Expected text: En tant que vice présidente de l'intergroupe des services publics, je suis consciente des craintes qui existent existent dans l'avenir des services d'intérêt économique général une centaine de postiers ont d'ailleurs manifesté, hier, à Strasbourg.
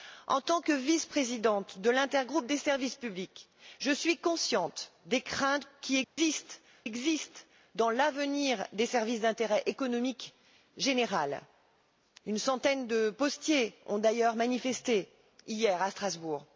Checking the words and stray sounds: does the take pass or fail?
fail